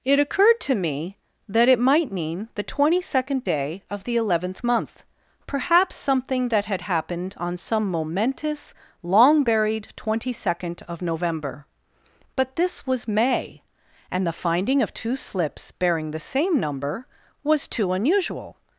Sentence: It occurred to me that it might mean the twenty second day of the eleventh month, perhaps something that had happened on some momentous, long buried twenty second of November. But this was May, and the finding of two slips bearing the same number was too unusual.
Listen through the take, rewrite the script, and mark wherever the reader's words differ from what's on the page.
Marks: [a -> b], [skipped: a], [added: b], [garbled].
It occurred to me that it might mean the twenty second day of the eleventh month, perhaps something that had happened on some momentous, long buried twenty second of November. But this was May, and the finding of two slips bearing the same number was too unusual.